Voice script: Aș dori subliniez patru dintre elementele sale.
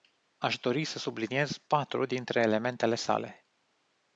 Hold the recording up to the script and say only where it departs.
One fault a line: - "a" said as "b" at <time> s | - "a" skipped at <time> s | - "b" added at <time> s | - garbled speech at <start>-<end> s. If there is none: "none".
- "să" added at 0.8 s